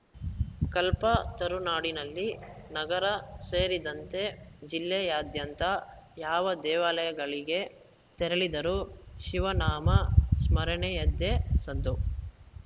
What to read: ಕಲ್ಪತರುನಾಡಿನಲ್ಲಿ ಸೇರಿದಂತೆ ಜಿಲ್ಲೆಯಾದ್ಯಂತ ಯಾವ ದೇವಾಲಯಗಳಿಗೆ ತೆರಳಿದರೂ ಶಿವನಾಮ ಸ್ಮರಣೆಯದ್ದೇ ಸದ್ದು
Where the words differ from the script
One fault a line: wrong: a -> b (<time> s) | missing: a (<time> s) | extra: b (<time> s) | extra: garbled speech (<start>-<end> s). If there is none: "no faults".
extra: ನಗರ (2.7 s)